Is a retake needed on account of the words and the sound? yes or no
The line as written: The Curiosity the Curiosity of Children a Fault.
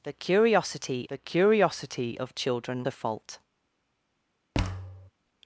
yes